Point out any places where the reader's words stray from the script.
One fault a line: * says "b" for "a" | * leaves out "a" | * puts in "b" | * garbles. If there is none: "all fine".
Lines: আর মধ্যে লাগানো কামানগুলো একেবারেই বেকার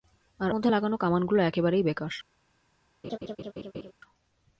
all fine